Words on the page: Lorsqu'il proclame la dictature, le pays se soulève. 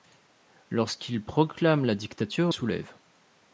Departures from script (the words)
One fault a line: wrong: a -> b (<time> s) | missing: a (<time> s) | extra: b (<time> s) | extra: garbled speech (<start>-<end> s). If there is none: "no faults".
missing: le pays se (2.5 s)